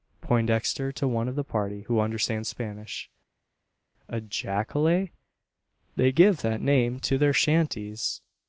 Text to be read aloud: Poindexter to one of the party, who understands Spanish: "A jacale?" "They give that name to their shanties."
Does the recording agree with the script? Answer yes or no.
yes